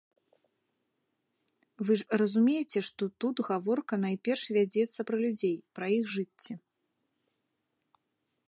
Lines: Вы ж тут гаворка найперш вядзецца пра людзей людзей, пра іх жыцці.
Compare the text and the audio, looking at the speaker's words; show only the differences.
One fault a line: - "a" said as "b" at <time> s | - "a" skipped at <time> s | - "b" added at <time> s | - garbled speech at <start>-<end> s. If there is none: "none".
- "разумееце што" added at 2.2 s
- "людзей" skipped at 5.6 s